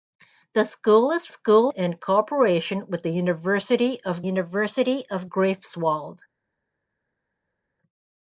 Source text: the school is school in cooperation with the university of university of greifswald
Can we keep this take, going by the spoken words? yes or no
yes